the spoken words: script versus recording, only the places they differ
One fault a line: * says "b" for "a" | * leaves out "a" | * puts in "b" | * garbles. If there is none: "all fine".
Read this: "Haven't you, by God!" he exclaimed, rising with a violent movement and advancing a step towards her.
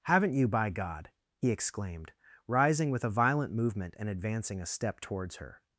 all fine